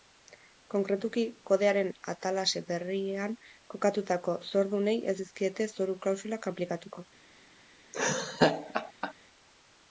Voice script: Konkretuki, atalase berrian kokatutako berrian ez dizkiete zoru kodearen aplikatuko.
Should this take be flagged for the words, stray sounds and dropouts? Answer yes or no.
yes